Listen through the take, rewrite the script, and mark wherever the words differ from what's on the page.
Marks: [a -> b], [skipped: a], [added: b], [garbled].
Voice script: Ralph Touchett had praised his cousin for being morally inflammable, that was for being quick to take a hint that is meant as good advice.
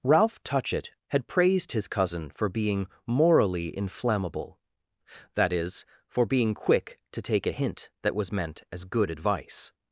Ralph Touchett had praised his cousin for being morally inflammable, that [was -> is] for being quick to take a hint that [is -> was] meant as good advice.